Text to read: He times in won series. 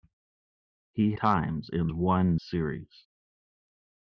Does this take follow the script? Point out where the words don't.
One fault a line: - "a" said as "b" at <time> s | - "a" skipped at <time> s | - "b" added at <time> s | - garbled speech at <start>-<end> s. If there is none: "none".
none